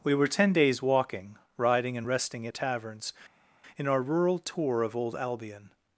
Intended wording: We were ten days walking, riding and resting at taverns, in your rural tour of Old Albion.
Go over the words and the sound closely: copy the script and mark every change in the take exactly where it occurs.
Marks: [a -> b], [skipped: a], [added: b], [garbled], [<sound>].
We were ten days walking, riding and resting at taverns, in [your -> our] rural tour of Old Albion.